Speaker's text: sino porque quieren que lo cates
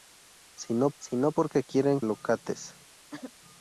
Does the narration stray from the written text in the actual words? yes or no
yes